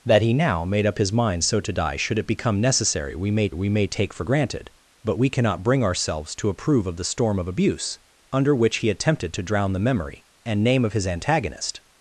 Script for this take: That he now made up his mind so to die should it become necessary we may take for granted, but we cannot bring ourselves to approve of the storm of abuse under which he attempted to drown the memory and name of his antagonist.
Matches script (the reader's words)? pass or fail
fail